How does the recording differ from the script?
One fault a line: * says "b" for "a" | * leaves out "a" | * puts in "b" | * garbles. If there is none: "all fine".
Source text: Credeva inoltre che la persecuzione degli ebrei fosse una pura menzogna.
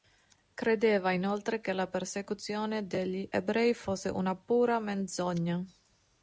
all fine